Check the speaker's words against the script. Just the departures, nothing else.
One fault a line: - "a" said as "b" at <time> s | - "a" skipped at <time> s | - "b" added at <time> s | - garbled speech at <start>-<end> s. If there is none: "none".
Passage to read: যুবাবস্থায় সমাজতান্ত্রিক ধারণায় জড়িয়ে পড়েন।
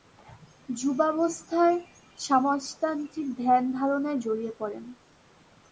- "ধ্যান" added at 3.4 s